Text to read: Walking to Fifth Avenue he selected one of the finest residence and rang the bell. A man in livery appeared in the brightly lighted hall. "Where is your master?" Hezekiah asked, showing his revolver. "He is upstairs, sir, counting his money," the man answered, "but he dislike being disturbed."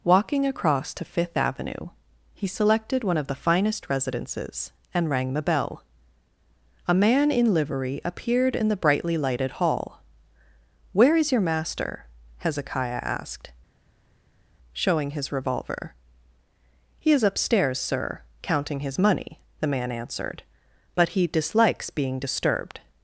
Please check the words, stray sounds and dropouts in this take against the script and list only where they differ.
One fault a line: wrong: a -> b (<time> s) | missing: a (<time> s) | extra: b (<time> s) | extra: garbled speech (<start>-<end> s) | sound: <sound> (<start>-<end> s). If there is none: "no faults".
extra: across (0.5 s)
wrong: residence -> residences (3.9 s)
wrong: dislike -> dislikes (21.3 s)